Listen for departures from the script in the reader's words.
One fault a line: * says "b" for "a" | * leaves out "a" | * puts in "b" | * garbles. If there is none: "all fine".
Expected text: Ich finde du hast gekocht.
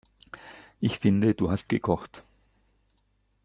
all fine